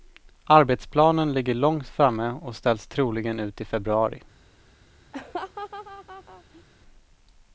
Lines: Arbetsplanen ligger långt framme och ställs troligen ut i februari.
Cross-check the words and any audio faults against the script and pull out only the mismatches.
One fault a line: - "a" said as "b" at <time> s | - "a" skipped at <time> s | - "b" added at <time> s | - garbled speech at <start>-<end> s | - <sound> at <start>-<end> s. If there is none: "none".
- laugh at 5.1-6.6 s